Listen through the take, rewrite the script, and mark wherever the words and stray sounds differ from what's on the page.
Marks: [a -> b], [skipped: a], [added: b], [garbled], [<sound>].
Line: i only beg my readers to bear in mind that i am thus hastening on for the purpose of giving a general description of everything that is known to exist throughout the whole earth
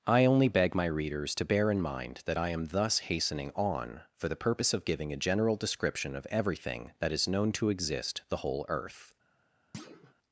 i only beg my readers to bear in mind that i am thus hastening on for the purpose of giving a general description of everything that is known to exist [skipped: throughout] the whole earth [thud]